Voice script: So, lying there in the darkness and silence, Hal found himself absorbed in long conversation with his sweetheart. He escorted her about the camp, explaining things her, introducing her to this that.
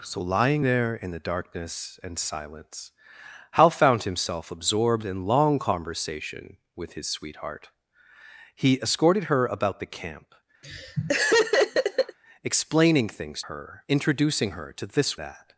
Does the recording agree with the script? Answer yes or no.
yes